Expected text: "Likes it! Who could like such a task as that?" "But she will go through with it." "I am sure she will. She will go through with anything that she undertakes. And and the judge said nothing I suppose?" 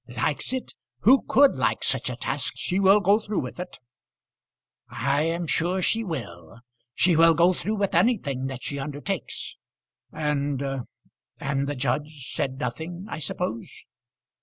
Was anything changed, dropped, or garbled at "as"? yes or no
yes